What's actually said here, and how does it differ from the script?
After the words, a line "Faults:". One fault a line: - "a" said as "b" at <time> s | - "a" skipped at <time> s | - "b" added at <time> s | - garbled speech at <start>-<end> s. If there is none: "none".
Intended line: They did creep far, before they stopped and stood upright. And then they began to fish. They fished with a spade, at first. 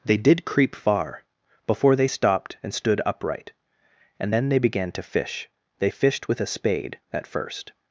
They did creep far, before they stopped and stood upright. And then they began to fish. They fished with a spade, at first.
Faults:
none